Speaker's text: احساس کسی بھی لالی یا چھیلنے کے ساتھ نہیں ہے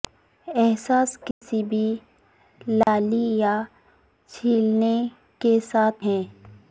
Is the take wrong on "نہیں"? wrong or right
wrong